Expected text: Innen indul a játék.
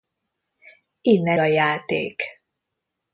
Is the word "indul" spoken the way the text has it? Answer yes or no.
no